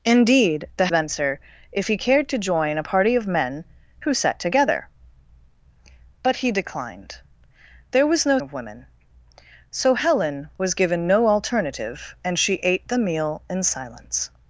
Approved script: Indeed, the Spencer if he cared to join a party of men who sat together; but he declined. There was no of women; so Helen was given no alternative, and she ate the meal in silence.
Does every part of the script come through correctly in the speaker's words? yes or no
yes